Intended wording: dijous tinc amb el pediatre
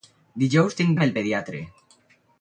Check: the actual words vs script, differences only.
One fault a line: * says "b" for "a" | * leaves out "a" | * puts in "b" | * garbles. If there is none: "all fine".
all fine